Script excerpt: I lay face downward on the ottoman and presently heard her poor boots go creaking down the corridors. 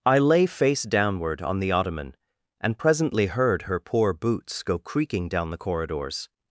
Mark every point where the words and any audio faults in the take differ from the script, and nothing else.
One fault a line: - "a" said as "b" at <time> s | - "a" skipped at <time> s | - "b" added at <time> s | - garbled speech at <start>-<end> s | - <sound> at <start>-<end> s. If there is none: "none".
none